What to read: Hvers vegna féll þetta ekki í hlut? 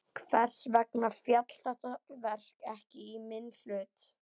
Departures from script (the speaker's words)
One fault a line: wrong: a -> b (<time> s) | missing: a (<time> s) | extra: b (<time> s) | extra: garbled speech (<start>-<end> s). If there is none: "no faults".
extra: verk (2.3 s)
extra: minn (3.3 s)